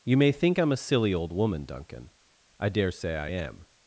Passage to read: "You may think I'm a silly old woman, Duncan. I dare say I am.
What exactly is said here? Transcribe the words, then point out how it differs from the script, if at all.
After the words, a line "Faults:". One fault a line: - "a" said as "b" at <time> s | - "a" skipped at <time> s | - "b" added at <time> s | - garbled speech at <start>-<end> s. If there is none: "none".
"You may think I'm a silly old woman, Duncan. I dare say I am.
Faults:
none